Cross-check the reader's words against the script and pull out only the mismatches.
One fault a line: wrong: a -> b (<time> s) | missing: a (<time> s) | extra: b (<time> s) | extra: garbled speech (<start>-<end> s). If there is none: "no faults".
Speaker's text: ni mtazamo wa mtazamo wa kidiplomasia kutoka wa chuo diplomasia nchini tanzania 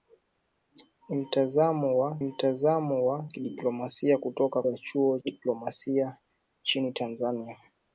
no faults